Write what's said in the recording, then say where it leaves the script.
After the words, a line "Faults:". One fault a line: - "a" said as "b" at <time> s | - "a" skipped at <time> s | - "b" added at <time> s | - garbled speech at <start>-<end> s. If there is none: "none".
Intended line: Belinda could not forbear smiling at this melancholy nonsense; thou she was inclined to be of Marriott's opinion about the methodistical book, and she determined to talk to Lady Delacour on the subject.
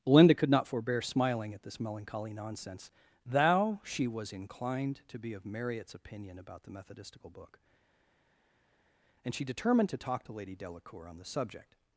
Belinda could not forbear smiling at this melancholy nonsense; thou she was inclined to be of Marriott's opinion about the methodistical book, and she determined to talk to Lady Delacour on the subject.
Faults:
none